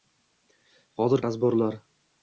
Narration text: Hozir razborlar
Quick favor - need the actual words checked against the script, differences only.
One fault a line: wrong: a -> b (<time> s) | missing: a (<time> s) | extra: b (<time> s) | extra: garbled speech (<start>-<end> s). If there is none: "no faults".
no faults